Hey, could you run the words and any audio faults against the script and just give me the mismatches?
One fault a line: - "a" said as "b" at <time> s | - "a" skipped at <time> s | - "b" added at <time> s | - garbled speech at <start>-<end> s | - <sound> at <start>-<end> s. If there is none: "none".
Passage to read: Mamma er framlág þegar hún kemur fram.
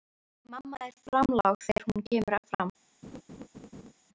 - laugh at 3.0-3.9 s